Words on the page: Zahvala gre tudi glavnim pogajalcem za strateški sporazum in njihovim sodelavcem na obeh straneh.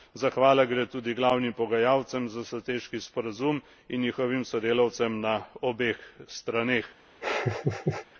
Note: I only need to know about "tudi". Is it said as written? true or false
true